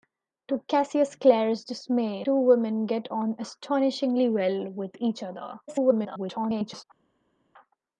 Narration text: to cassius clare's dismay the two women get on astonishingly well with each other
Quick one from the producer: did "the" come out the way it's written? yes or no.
no